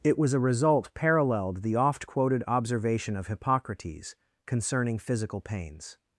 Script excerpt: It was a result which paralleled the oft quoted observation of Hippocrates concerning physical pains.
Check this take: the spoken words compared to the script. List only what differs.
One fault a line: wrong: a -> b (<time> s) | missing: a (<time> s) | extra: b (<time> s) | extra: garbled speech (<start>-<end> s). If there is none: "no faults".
missing: which (0.9 s)